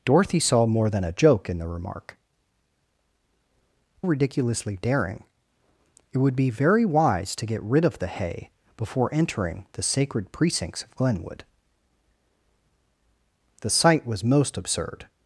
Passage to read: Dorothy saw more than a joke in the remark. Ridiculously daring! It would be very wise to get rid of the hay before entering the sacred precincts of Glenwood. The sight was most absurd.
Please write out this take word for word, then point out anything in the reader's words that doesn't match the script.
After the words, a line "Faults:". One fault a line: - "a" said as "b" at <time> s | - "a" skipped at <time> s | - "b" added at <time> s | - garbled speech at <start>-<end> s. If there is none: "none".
Dorothy saw more than a joke in the remark. Ridiculously daring! It would be very wise to get rid of the hay before entering the sacred precincts of Glenwood. The sight was most absurd.
Faults:
none